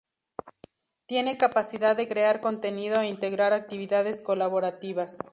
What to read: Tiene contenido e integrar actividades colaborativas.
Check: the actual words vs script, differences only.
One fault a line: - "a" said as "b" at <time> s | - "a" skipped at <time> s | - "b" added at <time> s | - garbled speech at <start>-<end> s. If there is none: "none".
- "capacidad de crear" added at 1.4 s